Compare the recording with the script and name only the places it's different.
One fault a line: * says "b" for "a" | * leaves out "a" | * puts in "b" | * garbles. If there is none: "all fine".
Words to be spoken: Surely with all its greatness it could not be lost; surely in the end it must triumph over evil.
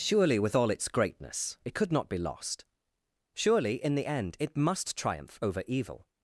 all fine